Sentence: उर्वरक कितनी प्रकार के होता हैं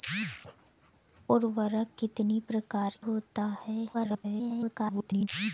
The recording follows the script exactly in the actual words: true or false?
false